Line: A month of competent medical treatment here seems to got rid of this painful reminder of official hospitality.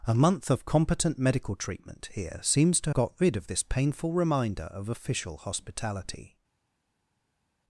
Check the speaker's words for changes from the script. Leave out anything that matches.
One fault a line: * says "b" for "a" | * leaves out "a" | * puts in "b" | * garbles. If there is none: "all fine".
all fine